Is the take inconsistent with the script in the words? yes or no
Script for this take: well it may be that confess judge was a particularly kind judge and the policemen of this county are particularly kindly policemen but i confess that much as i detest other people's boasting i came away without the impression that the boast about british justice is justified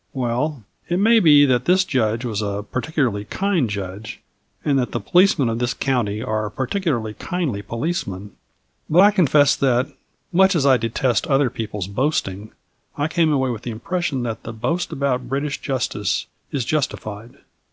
yes